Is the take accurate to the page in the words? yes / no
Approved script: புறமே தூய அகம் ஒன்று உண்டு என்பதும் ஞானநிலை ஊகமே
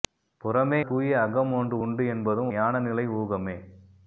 yes